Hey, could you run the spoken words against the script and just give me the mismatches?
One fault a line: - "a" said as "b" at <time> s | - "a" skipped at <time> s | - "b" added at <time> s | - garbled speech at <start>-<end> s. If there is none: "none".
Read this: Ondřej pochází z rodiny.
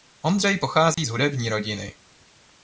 - "hudební" added at 1.1 s